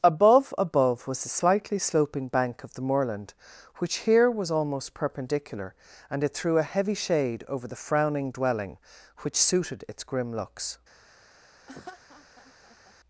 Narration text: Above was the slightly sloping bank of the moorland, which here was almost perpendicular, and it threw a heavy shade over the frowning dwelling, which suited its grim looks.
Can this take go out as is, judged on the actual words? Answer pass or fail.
fail